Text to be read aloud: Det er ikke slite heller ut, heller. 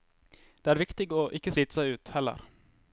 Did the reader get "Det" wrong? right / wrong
right